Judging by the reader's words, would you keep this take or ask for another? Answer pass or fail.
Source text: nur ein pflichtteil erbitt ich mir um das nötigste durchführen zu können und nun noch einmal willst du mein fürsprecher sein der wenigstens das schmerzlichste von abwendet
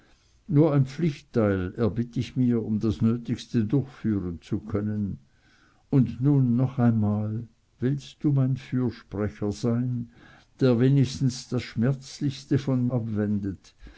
pass